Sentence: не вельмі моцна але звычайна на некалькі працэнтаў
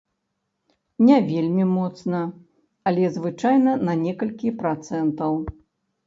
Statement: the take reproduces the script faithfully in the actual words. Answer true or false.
true